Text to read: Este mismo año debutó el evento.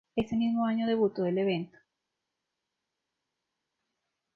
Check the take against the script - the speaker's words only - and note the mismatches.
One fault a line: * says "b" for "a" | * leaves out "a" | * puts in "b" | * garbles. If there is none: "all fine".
* says "Ese" for "Este"